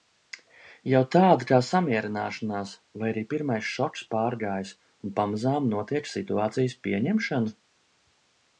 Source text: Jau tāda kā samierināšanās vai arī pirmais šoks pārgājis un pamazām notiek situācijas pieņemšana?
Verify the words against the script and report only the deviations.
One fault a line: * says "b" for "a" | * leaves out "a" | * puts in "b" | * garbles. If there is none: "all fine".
all fine